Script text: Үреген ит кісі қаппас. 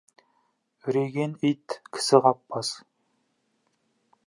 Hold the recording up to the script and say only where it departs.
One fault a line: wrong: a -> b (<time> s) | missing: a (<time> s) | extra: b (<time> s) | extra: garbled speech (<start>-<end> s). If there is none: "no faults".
no faults